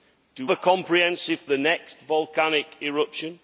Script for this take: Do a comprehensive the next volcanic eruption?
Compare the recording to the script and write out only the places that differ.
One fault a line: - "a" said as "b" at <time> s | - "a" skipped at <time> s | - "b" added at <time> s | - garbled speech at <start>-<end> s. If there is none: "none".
none